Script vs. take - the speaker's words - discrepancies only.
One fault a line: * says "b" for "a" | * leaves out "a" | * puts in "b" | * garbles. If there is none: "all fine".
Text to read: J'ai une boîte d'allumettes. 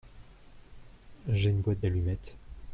all fine